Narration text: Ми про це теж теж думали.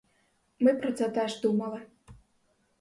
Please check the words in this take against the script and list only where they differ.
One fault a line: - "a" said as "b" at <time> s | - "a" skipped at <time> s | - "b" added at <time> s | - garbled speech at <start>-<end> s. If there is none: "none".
- "теж" skipped at 1.4 s